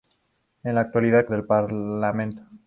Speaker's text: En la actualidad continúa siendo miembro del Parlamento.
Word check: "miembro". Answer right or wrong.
wrong